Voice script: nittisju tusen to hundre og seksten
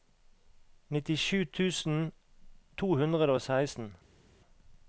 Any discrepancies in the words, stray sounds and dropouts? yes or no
no